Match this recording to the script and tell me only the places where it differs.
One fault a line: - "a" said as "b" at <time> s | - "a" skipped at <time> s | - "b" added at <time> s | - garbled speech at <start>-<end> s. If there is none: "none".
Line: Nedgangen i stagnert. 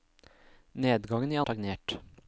none